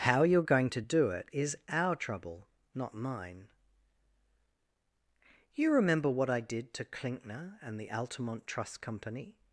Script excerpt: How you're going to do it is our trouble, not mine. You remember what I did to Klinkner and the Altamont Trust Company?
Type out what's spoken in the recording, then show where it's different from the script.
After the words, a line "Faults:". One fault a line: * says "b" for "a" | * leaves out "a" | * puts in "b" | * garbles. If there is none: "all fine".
How you're going to do it is our trouble, not mine. You remember what I did to Klinkner and the Altamont Trust Company?
Faults:
all fine